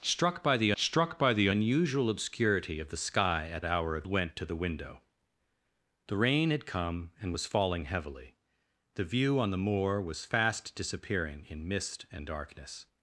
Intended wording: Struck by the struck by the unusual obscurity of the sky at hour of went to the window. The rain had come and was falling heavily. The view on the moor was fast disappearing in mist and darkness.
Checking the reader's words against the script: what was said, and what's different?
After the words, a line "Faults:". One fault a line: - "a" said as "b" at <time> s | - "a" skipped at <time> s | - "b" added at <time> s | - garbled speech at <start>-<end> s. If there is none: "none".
Struck by the struck by the unusual obscurity of the sky at hour of went to the window. The rain had come and was falling heavily. The view on the moor was fast disappearing in mist and darkness.
Faults:
none